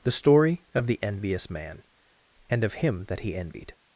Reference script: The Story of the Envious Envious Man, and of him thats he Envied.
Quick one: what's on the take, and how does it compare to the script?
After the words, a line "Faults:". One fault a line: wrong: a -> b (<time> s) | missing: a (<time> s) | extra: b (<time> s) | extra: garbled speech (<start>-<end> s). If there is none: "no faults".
The Story of the Envious Man, and of him that he Envied.
Faults:
missing: Envious (1.5 s)
wrong: thats -> that (3.0 s)